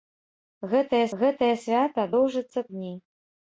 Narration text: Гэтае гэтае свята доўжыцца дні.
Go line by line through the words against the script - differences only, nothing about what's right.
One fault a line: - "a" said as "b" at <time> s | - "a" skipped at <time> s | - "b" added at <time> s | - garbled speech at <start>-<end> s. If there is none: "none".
none